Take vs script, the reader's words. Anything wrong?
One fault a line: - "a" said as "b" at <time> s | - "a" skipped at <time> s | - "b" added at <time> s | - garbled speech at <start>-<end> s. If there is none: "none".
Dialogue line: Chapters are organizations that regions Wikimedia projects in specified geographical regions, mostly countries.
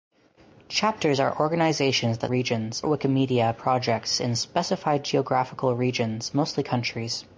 none